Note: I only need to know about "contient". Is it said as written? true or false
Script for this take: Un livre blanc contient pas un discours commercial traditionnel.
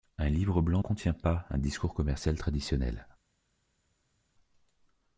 true